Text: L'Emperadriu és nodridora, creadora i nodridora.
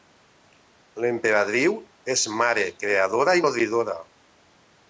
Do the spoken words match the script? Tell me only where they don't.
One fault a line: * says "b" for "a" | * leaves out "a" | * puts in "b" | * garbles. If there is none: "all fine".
* says "mare" for "nodridora"